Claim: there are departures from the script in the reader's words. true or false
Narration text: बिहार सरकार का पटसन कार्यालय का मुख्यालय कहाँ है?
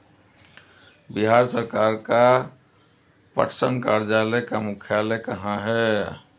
false